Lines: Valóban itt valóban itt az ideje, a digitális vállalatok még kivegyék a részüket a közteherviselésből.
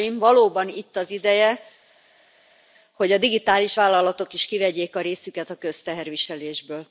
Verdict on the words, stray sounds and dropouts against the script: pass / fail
fail